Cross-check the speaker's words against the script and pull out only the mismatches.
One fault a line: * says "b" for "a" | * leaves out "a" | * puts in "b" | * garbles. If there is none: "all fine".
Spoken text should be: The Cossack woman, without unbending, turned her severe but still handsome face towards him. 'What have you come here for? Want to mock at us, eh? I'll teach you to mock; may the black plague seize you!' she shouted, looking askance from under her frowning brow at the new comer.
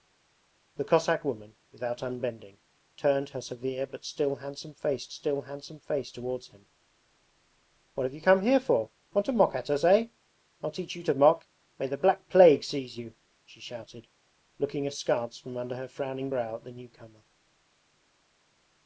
* puts in "still handsome face"